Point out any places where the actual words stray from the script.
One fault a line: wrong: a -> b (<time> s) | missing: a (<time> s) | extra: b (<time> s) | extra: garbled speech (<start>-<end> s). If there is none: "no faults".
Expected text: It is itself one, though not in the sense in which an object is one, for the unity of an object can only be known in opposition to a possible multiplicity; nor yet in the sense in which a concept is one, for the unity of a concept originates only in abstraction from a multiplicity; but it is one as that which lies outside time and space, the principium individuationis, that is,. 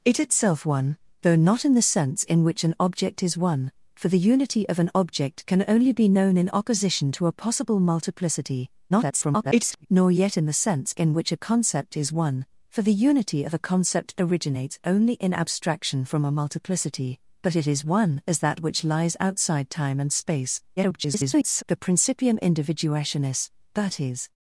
missing: is (0.2 s)
extra: garbled speech (8.9-9.9 s)
extra: garbled speech (20.8-21.6 s)